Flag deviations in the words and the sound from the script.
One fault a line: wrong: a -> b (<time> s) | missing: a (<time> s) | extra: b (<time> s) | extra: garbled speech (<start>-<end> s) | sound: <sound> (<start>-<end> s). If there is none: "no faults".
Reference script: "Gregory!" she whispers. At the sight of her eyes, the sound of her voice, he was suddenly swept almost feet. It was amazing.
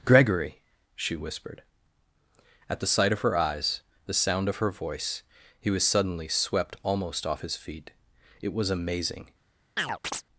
wrong: whispers -> whispered (1.1 s)
extra: off his (7.3 s)
sound: chirp (9.8-10.2 s)